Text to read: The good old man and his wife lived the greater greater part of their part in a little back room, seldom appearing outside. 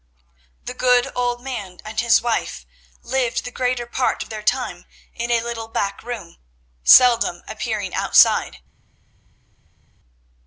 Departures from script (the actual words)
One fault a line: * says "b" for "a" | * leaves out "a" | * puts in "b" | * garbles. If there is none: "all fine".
* leaves out "greater"
* says "time" for "part"